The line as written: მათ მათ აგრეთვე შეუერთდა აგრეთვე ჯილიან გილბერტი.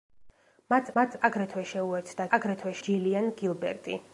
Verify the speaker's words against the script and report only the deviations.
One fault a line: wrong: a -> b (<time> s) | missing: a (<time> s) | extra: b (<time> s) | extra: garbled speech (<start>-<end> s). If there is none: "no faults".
no faults